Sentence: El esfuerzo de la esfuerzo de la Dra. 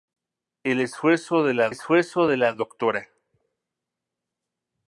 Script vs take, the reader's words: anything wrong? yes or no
no